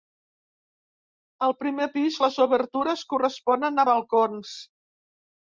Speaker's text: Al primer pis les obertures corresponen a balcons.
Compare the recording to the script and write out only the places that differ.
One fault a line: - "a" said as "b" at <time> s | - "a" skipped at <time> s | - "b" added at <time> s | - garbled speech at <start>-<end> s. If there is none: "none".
none